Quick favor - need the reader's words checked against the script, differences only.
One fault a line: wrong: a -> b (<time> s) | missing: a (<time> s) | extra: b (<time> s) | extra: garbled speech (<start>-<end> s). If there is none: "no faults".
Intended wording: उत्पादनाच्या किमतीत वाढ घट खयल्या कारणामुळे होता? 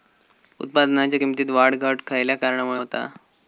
no faults